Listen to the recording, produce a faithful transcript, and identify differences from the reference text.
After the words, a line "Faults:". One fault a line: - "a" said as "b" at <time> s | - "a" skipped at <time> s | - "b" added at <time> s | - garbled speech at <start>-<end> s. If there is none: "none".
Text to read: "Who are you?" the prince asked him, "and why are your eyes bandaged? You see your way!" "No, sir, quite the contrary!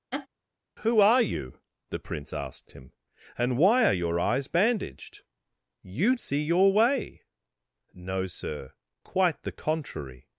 "Who are you?" the prince asked him, "and why are your eyes bandaged? You see your way!" "No, sir, quite the contrary!
Faults:
none